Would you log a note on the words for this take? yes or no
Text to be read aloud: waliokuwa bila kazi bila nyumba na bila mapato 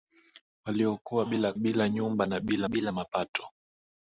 yes